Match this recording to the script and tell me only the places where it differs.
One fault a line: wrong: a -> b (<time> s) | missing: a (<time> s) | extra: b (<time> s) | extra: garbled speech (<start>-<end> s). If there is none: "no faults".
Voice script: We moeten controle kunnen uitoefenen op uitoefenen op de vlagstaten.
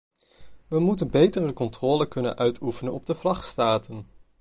extra: betere (1.1 s)
missing: uitoefenen op (3.1 s)